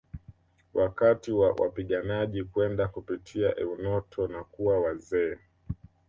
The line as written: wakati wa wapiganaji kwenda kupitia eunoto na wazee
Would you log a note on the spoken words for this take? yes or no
yes